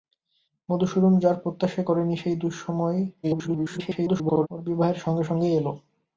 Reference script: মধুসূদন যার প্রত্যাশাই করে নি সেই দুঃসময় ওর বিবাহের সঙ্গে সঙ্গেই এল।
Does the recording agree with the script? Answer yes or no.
no